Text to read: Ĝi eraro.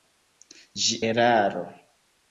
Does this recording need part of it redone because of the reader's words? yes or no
no